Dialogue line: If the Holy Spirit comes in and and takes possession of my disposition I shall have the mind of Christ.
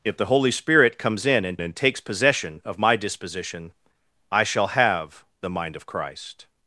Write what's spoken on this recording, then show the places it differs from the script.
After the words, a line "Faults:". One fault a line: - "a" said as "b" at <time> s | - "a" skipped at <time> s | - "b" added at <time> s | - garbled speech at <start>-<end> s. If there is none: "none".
If the Holy Spirit comes in and and takes possession of my disposition I shall have the mind of Christ.
Faults:
none